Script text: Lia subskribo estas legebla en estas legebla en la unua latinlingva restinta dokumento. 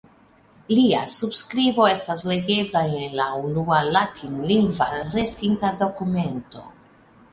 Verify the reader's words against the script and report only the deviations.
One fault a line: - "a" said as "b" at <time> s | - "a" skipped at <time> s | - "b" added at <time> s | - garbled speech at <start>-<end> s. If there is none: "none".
- "estas legebla en" skipped at 3.1 s